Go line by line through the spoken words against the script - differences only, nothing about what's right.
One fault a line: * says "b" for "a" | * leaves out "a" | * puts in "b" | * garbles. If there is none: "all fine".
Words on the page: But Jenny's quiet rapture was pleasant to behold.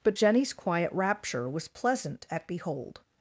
* says "at" for "to"